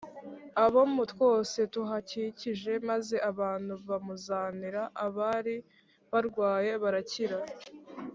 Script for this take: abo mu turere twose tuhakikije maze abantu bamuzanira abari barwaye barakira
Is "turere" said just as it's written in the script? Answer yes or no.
no